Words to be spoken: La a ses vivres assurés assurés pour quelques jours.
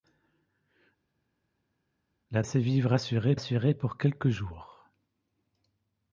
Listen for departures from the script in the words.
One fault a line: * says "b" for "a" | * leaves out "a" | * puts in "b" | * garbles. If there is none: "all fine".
all fine